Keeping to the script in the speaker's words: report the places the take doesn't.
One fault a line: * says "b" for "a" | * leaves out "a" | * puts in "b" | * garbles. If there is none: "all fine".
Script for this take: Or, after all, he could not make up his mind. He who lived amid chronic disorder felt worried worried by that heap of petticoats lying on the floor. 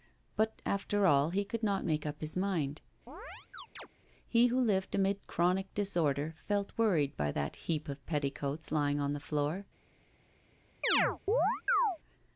* says "But" for "Or"
* leaves out "worried"